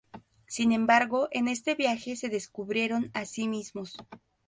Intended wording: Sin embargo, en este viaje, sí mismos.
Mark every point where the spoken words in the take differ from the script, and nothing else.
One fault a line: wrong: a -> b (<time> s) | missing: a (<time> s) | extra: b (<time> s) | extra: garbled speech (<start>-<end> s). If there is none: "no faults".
extra: se descubrieron a (2.1 s)